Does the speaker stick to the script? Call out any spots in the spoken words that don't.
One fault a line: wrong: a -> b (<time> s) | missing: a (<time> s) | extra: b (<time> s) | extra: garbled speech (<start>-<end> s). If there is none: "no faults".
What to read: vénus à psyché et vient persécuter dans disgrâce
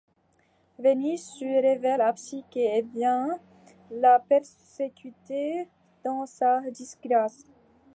extra: se révèle (1.2 s)
extra: la (3.9 s)
extra: sa (6.2 s)